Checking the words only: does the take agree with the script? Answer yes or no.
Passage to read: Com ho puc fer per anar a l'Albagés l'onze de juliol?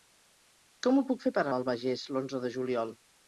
no